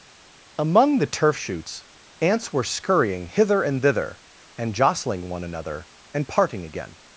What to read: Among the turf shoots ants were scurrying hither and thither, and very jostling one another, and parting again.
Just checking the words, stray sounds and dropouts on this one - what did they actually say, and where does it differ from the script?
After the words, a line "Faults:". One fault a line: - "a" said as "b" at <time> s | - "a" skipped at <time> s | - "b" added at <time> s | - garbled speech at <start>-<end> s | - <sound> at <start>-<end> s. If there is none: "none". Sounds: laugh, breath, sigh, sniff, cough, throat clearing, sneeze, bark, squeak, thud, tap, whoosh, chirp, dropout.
Among the turf shoots ants were scurrying hither and thither, and jostling one another, and parting again.
Faults:
- "very" skipped at 4.7 s